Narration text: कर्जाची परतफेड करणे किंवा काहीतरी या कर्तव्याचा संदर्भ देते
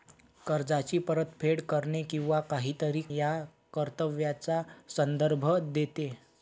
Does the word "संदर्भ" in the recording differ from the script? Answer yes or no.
no